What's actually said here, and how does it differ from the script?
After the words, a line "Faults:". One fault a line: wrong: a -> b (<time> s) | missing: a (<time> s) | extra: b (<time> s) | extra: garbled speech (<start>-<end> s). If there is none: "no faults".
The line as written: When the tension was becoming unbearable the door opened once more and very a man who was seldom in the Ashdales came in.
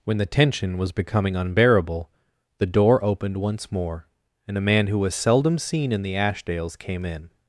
When the tension was becoming unbearable the door opened once more and a man who was seldom seen in the Ashdales came in.
Faults:
missing: very (4.6 s)
extra: seen (5.6 s)